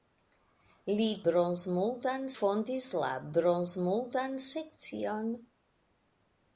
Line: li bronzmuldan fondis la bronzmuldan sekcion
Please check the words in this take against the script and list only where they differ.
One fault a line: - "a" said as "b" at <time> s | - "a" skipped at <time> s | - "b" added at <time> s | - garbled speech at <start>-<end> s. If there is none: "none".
none